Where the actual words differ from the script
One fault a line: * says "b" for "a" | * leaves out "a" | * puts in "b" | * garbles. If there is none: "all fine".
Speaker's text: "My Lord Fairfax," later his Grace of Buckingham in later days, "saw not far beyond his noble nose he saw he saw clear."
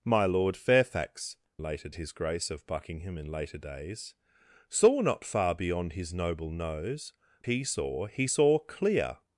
all fine